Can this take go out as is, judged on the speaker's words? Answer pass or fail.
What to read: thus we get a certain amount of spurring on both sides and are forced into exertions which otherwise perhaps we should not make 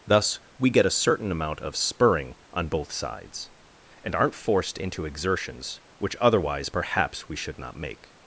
fail